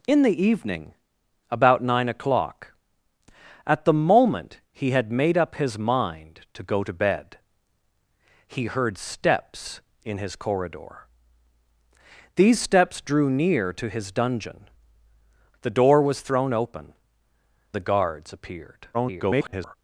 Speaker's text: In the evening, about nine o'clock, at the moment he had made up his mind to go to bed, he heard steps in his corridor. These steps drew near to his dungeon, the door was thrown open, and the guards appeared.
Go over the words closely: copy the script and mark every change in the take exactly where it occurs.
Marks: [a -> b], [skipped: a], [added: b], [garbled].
In the evening, about nine o'clock, at the moment he had made up his mind to go to bed, he heard steps in his corridor. These steps drew near to his dungeon, the door was thrown open, [skipped: and] the guards appeared. [garbled]